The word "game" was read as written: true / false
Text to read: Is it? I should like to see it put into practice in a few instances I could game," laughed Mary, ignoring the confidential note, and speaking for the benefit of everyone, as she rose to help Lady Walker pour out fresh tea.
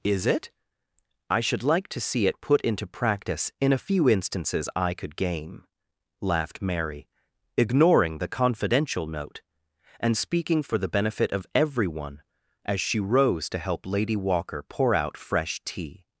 true